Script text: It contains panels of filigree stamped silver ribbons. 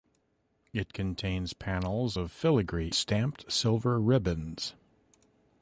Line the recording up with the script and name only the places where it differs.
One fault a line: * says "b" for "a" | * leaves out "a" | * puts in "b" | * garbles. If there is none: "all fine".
all fine